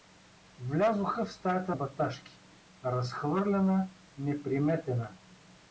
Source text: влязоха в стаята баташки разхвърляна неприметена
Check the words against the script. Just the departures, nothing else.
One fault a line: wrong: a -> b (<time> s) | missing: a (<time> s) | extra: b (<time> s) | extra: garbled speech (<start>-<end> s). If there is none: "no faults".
no faults